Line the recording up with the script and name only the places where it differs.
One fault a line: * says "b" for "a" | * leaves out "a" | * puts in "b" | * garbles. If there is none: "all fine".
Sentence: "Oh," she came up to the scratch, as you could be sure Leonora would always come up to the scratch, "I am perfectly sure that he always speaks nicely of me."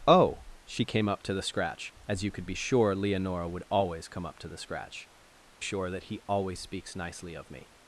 * leaves out "I am perfectly"